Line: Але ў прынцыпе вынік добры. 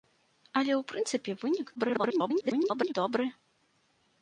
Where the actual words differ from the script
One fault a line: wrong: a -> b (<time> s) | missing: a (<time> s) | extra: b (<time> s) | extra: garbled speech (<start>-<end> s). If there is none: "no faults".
extra: garbled speech (1.8-2.9 s)